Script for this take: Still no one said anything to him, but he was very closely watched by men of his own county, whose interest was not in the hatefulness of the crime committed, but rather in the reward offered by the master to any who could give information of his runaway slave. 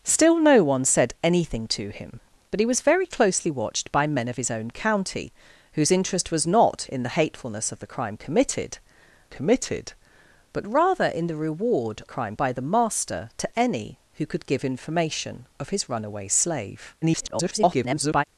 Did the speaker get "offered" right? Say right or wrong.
wrong